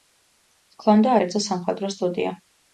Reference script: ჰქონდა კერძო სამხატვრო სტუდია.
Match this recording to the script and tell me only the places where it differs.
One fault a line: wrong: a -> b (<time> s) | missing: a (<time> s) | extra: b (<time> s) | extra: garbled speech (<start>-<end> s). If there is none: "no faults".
no faults